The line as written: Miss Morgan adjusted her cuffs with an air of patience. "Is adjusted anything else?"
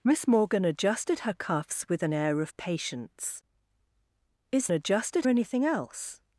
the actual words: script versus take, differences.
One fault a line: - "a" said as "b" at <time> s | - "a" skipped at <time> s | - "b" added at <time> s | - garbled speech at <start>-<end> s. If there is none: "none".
none